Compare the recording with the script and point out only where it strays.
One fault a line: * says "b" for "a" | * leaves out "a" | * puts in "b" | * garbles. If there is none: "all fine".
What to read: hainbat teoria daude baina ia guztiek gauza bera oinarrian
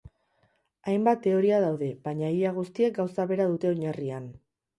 * puts in "dute"